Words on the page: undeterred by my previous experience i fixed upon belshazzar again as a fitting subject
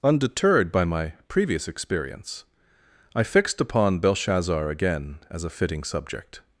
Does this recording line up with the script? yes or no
yes